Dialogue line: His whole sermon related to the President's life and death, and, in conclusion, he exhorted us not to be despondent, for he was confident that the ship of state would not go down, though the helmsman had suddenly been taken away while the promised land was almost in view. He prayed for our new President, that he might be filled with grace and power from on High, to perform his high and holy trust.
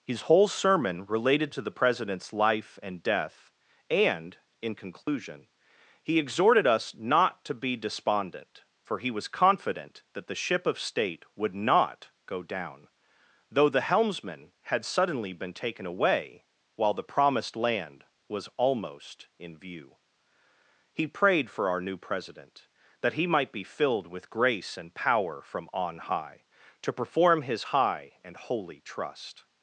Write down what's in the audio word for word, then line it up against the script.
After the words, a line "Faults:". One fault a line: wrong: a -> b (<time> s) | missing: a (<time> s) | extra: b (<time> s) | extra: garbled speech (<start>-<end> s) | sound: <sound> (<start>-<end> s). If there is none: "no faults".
His whole sermon related to the President's life and death, and, in conclusion, he exhorted us not to be despondent, for he was confident that the ship of state would not go down, though the helmsman had suddenly been taken away while the promised land was almost in view. He prayed for our new President, that he might be filled with grace and power from on High, to perform his high and holy trust.
Faults:
sound: dropout (5.0-5.1 s)